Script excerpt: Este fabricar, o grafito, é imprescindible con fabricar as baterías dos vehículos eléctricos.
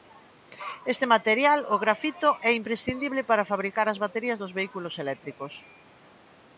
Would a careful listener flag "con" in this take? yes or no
yes